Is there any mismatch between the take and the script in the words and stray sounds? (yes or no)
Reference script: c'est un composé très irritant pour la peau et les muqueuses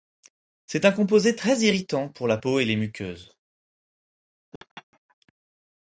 yes